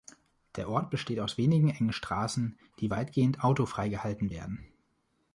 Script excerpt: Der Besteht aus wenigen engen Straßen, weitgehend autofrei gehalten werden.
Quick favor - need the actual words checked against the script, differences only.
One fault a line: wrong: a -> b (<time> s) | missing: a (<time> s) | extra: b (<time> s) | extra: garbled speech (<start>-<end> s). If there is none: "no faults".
extra: Ort (0.7 s)
extra: die (2.8 s)